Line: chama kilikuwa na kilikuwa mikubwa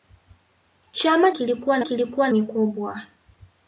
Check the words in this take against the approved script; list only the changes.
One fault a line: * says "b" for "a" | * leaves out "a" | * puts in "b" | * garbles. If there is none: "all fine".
all fine